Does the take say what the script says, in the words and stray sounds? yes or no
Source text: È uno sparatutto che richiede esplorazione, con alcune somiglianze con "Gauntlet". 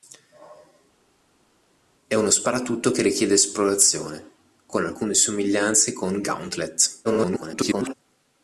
no